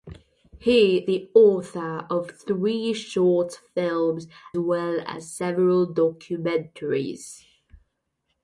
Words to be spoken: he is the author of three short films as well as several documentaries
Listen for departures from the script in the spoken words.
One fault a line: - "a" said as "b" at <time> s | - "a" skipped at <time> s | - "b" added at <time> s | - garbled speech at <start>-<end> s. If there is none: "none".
- "is" skipped at 1.1 s
- "as" skipped at 4.3 s